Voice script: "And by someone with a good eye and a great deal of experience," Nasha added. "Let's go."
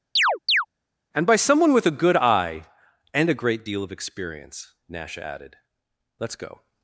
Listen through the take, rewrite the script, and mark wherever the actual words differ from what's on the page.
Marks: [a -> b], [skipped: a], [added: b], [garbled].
"And by someone with a good eye and a great deal of experience," Nasha added. "Let's go."